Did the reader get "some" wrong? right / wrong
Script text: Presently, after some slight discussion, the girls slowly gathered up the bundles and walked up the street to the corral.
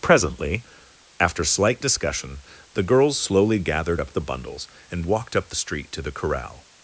wrong